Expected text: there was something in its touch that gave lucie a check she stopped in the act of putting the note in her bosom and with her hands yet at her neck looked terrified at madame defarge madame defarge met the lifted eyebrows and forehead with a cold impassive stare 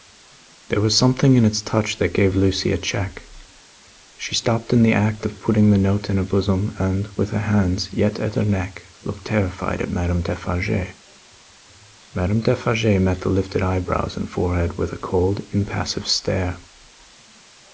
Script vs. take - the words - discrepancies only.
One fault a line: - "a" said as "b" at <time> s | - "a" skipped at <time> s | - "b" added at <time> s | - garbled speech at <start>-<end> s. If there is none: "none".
none